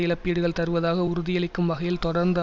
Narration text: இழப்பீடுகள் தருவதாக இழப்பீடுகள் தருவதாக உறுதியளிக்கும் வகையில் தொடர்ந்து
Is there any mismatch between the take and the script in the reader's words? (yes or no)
yes